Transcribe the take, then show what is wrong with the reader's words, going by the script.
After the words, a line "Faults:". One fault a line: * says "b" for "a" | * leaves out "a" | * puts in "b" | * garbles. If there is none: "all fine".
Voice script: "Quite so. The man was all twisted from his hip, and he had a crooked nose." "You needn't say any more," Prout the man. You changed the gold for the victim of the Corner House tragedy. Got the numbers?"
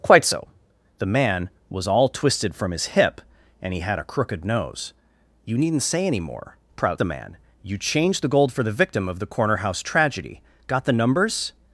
"Quite so. The man was all twisted from his hip, and he had a crooked nose." "You needn't say any more," Prout the man. You changed the gold for the victim of the Corner House tragedy. Got the numbers?"
Faults:
all fine